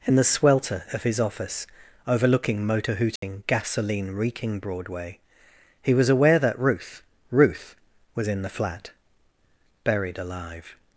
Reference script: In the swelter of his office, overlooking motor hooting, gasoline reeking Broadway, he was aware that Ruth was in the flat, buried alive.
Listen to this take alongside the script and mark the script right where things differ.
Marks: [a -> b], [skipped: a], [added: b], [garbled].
In the swelter of his office, overlooking motor hooting, gasoline reeking Broadway, he was aware that Ruth [added: Ruth] was in the flat, buried alive.